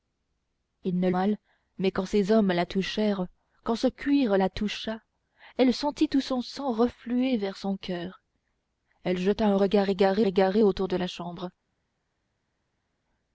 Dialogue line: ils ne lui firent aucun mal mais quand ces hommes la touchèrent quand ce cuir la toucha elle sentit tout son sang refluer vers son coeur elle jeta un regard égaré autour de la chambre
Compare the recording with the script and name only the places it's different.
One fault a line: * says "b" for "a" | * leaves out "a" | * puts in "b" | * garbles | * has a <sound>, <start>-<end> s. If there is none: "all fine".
* leaves out "lui firent aucun"
* puts in "égaré"